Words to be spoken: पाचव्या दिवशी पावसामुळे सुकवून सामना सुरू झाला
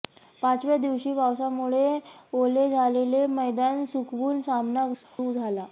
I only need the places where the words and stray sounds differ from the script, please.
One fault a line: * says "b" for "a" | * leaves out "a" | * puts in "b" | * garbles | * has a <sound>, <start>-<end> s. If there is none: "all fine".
* puts in "ओले झालेले मैदान"
* has a dropout, 5.0-5.2 s